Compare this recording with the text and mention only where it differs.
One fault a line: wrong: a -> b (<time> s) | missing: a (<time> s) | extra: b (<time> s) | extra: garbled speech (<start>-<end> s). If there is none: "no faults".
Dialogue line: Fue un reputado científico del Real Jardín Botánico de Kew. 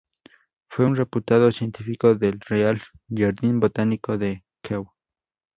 no faults